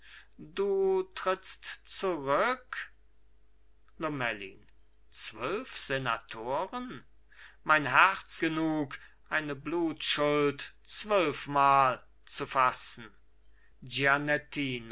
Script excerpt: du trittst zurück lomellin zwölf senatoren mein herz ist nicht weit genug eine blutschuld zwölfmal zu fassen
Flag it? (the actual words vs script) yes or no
yes